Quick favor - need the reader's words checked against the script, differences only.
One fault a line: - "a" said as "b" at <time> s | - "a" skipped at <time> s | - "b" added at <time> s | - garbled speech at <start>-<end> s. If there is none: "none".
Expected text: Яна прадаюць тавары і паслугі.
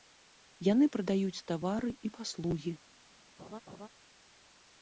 - "Яна" said as "Яны" at 0.7 s